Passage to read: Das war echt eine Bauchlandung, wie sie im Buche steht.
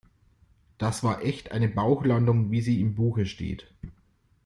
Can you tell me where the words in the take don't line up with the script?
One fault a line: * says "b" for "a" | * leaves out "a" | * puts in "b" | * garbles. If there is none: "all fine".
all fine